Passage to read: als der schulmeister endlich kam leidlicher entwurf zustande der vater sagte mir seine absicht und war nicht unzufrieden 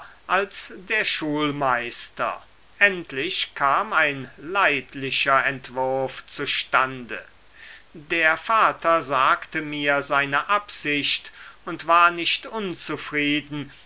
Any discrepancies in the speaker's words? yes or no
yes